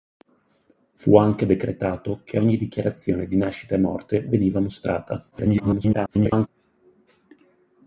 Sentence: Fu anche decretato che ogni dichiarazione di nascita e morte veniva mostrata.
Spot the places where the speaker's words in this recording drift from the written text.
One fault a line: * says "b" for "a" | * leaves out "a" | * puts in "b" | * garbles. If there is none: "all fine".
* garbles